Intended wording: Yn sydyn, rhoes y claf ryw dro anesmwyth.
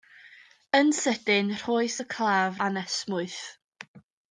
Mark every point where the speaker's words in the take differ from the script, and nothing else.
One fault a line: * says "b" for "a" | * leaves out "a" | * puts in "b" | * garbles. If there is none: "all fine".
* leaves out "ryw dro"